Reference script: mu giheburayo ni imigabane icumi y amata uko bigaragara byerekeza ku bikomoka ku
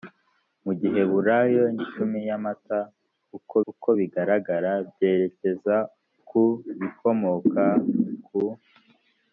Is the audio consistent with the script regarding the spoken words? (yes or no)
no